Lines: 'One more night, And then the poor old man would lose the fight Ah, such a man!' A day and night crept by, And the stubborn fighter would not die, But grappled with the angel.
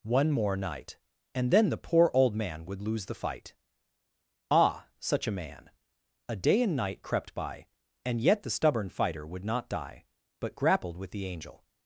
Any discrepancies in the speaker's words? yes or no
yes